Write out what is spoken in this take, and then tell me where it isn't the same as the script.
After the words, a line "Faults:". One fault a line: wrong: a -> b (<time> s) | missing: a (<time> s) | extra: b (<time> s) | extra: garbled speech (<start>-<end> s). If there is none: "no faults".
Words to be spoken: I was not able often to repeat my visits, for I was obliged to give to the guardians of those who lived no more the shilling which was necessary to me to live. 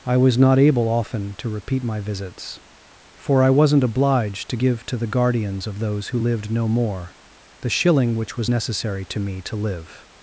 I was not able often to repeat my visits, for I wasn't obliged to give to the guardians of those who lived no more the shilling which was necessary to me to live.
Faults:
wrong: was -> wasn't (3.5 s)